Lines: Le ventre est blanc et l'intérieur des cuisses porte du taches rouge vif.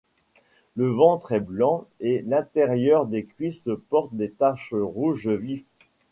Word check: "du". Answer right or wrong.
wrong